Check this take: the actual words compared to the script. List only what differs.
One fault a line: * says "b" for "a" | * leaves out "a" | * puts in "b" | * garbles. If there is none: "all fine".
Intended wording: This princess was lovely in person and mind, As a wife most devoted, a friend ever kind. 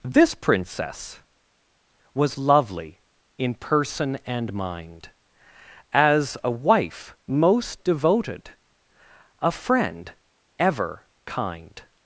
all fine